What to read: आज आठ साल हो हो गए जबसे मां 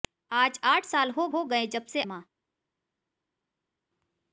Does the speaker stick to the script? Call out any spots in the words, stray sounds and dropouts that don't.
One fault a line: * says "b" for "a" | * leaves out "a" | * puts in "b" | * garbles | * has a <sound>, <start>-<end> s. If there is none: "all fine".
all fine